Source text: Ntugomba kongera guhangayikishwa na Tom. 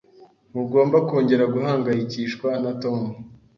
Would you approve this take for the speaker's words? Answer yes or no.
yes